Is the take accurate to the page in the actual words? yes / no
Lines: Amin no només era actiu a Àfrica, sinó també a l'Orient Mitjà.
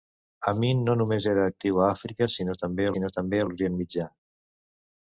no